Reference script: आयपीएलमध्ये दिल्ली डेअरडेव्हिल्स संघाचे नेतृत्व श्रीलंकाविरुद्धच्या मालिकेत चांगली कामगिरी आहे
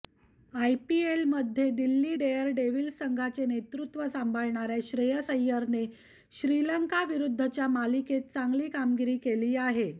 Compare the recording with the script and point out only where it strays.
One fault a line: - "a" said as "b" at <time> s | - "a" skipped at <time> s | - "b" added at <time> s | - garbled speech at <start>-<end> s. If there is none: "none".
- "सांभाळणाऱ्या श्रेयस अय्यरने" added at 4.1 s
- "केली" added at 9.2 s